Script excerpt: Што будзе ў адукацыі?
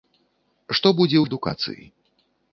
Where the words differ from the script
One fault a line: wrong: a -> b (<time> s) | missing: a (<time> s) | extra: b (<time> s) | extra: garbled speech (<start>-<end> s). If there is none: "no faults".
no faults